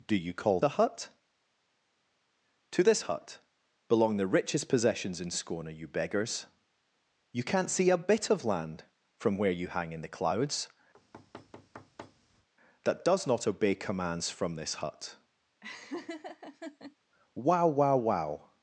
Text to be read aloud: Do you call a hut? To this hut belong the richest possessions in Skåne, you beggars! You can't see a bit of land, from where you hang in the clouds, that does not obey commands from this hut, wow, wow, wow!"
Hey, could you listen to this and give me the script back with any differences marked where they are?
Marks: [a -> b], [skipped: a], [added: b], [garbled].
Do you call a hut? To this hut belong the richest possessions in Skåne, you beggars! You can't see a bit of land, from where you hang in the clouds, that does not obey commands from this hut, wow, wow, wow!"